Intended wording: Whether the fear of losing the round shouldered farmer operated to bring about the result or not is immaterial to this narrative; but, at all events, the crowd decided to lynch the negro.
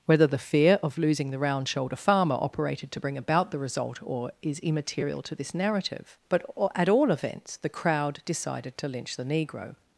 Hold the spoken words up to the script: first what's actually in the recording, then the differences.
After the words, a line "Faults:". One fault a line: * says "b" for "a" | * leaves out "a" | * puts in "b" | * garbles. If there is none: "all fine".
Whether the fear of losing the round shoulder farmer operated to bring about the result or is immaterial to this narrative; but, at all events, the crowd decided to lynch the negro.
Faults:
* says "shoulder" for "shouldered"
* leaves out "not"